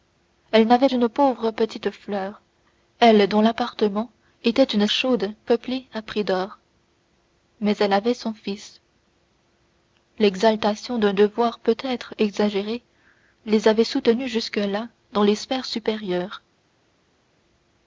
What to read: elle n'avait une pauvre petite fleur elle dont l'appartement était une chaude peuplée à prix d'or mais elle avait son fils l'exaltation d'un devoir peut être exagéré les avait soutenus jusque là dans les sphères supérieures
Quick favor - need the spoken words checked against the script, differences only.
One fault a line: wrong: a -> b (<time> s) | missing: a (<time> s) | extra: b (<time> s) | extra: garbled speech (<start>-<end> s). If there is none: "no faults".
no faults